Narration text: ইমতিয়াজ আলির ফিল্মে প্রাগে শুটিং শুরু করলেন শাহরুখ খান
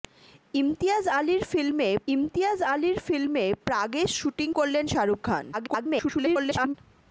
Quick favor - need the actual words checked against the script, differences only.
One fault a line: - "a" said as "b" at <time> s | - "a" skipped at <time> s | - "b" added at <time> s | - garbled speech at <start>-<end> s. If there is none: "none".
- "ইমতিয়াজ আলির ফিল্মে" added at 2.1 s
- "শুরু" skipped at 4.5 s
- garbled speech at 5.5-6.7 s